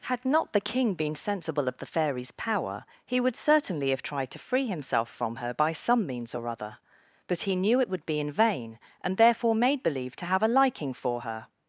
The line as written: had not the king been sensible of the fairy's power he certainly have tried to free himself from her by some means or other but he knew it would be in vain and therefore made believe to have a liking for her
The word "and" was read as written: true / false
true